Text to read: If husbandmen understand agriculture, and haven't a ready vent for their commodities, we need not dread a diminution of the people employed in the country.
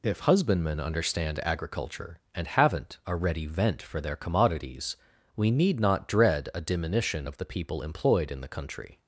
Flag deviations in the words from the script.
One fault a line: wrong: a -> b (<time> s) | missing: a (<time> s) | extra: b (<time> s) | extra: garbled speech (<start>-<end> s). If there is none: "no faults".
no faults